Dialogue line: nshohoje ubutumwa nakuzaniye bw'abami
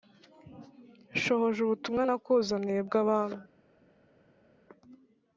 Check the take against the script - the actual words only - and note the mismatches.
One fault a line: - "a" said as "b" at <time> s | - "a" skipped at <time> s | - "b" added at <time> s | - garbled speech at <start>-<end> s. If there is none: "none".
none